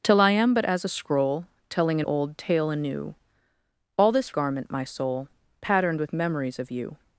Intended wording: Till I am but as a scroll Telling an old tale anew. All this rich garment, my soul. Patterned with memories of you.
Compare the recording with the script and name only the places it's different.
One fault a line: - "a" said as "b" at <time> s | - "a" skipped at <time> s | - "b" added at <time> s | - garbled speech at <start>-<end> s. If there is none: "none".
- "rich" skipped at 4.3 s